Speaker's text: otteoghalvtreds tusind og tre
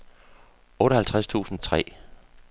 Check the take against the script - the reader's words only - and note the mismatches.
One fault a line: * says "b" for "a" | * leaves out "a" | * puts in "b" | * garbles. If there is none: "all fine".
all fine